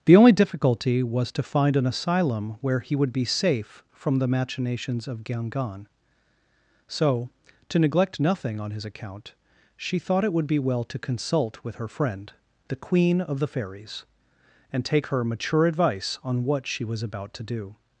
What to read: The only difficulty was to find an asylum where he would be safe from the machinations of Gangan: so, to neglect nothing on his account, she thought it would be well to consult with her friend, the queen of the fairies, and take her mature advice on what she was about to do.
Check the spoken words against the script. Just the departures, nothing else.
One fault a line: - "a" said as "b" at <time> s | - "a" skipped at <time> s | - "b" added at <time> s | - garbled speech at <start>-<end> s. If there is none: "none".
none